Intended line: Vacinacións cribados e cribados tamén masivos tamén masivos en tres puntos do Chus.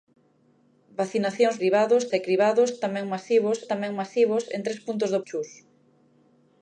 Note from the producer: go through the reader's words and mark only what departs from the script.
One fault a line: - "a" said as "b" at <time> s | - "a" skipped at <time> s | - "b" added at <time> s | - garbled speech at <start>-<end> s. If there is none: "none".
none